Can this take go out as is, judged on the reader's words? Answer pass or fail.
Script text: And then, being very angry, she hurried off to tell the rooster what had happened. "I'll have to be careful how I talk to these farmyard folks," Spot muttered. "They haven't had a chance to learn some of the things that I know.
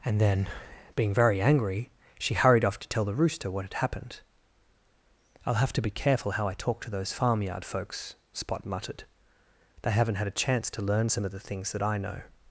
fail